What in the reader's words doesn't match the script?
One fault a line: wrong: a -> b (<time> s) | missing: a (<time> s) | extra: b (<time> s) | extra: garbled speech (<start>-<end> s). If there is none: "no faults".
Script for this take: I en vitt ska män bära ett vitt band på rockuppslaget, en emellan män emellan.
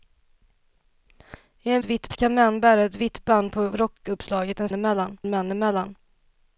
no faults